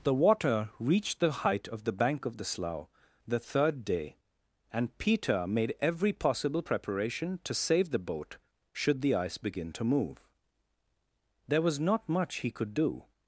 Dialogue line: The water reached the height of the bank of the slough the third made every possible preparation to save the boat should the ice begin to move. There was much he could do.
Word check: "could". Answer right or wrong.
right